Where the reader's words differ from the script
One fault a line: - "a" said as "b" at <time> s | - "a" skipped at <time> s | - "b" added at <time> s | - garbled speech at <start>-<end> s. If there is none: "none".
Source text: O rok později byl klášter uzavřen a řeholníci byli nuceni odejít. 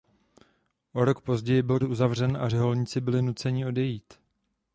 - "klášter" skipped at 1.8 s